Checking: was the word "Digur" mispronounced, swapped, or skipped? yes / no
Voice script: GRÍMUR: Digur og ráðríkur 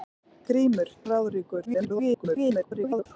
yes